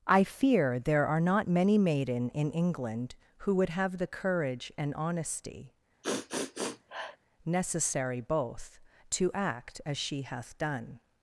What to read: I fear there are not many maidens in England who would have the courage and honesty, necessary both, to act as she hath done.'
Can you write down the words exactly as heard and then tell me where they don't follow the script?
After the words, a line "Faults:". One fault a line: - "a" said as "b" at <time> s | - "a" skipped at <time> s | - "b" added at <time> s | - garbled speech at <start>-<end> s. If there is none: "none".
I fear there are not many maiden in England who would have the courage and honesty, necessary both, to act as she hath done.'
Faults:
- "maidens" said as "maiden" at 1.8 s